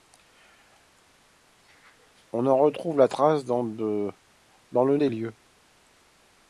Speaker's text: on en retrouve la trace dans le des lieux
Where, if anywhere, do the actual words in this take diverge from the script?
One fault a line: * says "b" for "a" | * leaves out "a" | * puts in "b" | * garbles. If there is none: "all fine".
all fine